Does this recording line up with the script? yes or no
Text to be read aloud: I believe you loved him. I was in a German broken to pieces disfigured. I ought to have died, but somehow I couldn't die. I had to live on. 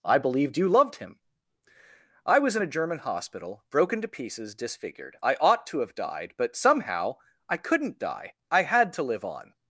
no